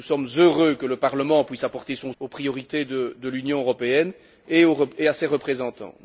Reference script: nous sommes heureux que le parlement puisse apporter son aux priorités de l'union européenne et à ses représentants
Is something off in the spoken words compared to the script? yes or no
no